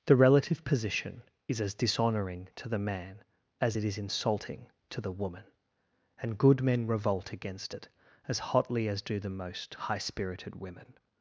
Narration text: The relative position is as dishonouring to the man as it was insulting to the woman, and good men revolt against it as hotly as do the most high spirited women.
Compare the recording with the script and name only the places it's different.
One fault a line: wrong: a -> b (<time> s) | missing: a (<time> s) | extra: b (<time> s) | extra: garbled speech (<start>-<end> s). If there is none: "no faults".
wrong: was -> is (3.8 s)